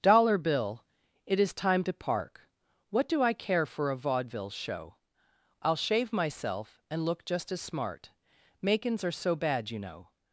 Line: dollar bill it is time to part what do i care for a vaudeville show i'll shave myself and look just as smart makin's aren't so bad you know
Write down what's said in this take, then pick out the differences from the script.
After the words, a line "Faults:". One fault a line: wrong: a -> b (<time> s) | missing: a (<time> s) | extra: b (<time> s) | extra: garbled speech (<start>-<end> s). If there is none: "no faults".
dollar bill it is time to park what do i care for a vaudeville show i'll shave myself and look just as smart makin's are so bad you know
Faults:
wrong: part -> park (1.9 s)
wrong: aren't -> are (9.0 s)